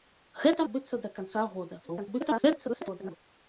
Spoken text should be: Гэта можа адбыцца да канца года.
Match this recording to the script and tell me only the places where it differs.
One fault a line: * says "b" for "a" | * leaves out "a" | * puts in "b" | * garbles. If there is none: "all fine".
* leaves out "можа"
* garbles